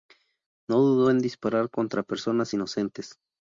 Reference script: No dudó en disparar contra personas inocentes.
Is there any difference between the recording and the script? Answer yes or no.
no